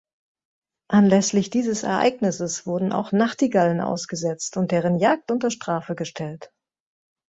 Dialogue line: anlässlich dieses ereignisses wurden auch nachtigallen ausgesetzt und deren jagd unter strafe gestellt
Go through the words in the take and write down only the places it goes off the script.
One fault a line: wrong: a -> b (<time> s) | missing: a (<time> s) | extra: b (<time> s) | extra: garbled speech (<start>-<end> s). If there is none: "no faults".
no faults